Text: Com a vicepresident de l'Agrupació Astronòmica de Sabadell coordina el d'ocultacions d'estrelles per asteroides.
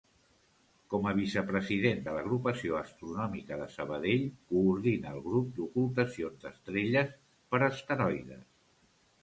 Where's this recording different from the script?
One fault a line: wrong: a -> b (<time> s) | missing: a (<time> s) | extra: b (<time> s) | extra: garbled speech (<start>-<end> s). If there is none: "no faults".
extra: grup (5.3 s)